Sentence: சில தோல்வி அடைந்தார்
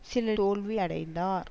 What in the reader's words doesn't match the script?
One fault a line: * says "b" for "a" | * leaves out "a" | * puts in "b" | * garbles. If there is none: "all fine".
all fine